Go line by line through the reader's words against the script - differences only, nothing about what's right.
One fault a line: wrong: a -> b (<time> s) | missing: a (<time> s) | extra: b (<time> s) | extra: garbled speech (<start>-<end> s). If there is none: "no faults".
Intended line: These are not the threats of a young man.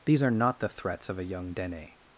wrong: man -> dene (1.5 s)